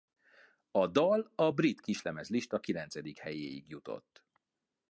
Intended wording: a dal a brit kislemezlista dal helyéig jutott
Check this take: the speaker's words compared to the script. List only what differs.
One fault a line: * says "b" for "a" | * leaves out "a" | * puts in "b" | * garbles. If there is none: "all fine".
* says "kilencedik" for "dal"